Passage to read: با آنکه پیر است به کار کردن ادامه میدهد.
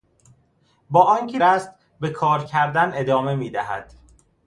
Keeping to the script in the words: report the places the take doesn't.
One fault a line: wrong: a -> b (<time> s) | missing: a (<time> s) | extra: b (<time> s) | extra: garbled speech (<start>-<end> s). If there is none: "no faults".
missing: پیر (1.4 s)